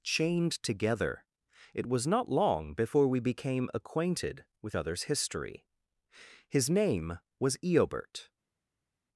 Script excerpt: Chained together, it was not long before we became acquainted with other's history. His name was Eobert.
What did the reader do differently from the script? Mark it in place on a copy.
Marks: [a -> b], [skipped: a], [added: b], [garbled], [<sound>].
Chained together, it was not long before we became acquainted with other's history. His name was Eobert.